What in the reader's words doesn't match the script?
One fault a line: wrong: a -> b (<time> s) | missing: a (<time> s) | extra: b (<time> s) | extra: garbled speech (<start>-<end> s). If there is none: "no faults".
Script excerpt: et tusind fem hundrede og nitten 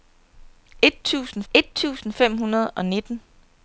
extra: et tusind (1.5 s)